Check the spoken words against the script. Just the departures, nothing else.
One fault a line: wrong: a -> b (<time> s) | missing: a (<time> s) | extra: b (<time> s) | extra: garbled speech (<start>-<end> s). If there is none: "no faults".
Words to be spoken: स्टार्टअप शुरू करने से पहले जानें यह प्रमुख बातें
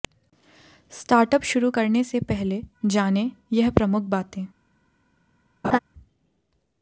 no faults